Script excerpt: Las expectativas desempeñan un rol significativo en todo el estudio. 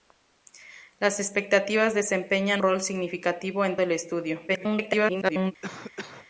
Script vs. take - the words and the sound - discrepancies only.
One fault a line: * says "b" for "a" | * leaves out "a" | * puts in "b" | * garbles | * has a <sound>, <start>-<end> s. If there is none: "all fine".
* leaves out "un"
* leaves out "todo"
* garbles
* has a cough, 5.6-6.3 s